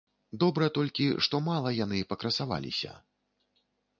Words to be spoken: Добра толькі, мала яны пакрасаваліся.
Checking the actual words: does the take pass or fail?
fail